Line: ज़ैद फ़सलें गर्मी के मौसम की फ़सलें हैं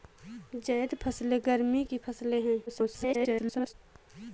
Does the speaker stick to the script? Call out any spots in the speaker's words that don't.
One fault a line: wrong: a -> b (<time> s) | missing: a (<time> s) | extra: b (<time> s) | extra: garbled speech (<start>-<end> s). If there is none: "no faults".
missing: के मौसम (1.8 s)
extra: garbled speech (2.7-3.7 s)